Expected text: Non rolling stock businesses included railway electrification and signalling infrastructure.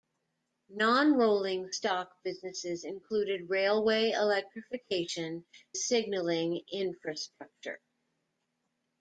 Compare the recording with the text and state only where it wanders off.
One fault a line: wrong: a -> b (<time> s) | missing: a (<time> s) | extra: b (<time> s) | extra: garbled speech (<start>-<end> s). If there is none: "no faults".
missing: and (5.5 s)